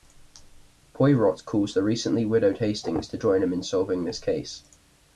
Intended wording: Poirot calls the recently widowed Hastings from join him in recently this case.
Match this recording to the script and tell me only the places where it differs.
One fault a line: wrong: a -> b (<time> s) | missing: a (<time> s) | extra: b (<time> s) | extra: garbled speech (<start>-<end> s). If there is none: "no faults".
wrong: from -> to (3.1 s)
wrong: recently -> solving (3.6 s)